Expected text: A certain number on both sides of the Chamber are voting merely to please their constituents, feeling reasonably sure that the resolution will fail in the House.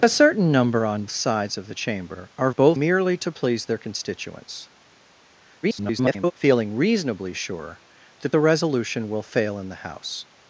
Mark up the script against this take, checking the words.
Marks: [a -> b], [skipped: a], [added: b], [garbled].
A certain number on [skipped: both] sides of the Chamber are [voting -> both] merely to please their constituents, [garbled] feeling reasonably sure that the resolution will fail in the House.